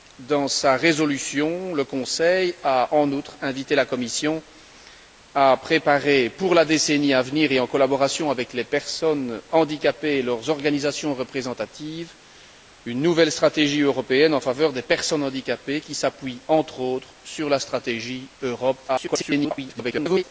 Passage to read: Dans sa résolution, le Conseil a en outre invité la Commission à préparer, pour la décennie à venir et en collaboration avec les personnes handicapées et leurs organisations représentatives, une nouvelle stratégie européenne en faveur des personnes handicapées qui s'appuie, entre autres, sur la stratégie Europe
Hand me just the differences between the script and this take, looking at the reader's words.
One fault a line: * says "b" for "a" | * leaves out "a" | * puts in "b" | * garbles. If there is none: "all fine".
* garbles